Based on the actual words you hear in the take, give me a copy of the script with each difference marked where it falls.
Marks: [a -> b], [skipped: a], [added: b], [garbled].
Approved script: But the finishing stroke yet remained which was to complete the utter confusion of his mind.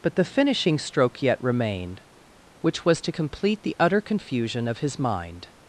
But the finishing stroke yet remained which was to complete the utter confusion of his mind.